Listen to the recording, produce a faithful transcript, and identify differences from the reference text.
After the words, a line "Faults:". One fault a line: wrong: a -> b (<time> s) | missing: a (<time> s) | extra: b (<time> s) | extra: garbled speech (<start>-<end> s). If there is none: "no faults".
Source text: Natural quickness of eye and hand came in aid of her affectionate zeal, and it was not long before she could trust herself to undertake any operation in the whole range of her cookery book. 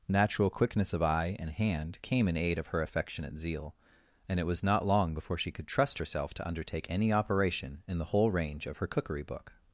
Natural quickness of eye and hand came in aid of her affectionate zeal, and it was not long before she could trust herself to undertake any operation in the whole range of her cookery book.
Faults:
no faults